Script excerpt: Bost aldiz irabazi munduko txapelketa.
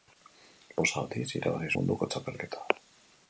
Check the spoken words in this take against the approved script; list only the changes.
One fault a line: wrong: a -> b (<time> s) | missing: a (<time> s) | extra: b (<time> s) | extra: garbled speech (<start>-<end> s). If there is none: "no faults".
no faults